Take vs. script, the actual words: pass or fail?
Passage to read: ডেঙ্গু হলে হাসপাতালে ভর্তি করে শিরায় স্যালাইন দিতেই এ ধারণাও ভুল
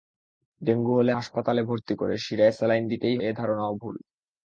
pass